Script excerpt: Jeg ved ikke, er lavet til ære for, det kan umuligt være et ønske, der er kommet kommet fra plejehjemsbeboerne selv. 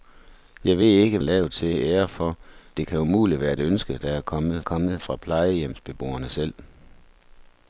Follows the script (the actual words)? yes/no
yes